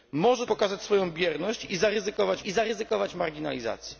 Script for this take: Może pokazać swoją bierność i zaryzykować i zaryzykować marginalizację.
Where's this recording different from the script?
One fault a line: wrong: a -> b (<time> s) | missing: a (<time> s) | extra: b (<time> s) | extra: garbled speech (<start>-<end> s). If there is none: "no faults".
no faults